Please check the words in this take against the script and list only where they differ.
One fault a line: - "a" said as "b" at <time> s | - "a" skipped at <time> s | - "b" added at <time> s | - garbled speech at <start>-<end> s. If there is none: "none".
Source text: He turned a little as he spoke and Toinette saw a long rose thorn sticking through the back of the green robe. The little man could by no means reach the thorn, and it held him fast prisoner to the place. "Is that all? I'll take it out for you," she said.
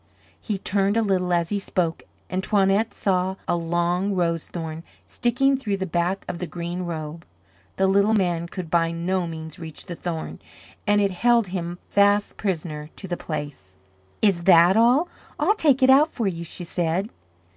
none